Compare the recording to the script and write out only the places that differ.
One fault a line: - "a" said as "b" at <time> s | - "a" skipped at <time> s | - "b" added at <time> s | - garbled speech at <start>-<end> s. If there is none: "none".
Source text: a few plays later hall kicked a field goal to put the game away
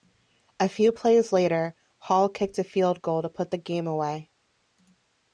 none